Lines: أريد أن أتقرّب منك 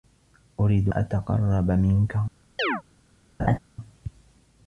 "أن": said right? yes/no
no